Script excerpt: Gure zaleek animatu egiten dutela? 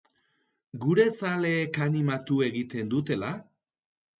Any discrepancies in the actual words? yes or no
no